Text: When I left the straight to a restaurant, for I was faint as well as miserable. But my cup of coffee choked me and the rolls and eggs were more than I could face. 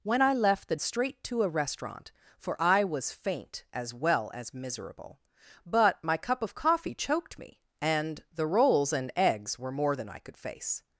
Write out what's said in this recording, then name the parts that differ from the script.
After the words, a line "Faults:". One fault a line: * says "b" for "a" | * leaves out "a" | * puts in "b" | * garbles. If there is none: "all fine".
When I left the straight to a restaurant, for I was faint as well as miserable. But my cup of coffee choked me and the rolls and eggs were more than I could face.
Faults:
all fine